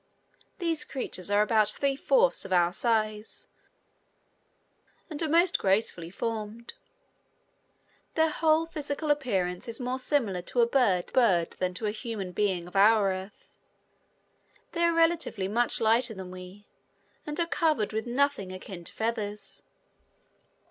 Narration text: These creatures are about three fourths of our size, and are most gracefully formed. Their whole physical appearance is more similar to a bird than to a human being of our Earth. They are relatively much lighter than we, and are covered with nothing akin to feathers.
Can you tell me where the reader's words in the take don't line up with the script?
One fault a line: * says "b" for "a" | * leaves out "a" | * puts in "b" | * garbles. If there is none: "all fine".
* puts in "bird"